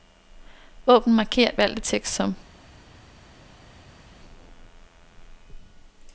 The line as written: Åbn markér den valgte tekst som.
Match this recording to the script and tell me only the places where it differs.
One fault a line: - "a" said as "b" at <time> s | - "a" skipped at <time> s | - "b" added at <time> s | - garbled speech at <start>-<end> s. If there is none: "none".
- "den" skipped at 1.5 s